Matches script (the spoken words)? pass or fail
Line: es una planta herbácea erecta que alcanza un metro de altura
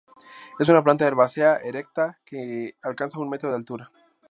pass